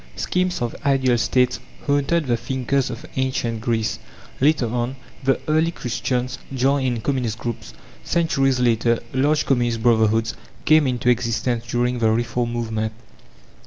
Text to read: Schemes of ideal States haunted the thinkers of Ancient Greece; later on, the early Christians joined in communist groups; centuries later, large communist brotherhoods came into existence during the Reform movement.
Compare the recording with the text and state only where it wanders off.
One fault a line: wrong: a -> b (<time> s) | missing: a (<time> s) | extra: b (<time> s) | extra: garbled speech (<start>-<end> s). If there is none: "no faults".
no faults